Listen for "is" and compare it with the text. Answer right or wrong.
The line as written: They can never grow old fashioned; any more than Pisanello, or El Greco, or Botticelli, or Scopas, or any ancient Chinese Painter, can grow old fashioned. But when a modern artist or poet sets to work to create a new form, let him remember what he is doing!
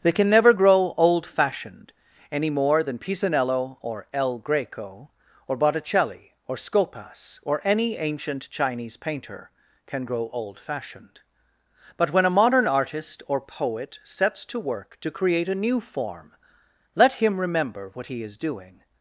right